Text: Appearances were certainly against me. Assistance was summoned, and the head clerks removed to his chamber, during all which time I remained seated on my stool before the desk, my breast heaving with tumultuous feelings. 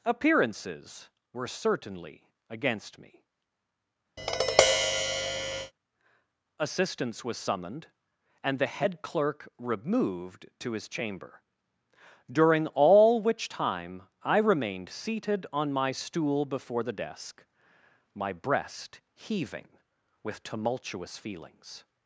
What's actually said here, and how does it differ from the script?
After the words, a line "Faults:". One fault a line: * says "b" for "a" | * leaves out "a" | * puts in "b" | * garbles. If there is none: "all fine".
Appearances were certainly against me. Assistance was summoned, and the head clerk removed to his chamber, during all which time I remained seated on my stool before the desk, my breast heaving with tumultuous feelings.
Faults:
* says "clerk" for "clerks"